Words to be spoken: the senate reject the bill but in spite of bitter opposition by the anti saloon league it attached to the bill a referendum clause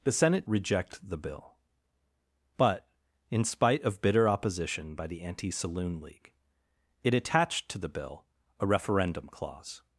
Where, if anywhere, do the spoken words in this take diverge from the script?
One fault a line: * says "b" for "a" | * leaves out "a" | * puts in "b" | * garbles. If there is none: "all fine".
all fine